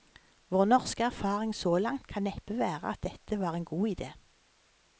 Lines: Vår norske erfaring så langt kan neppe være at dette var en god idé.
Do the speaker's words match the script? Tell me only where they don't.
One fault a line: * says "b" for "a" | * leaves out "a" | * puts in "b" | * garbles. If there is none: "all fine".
all fine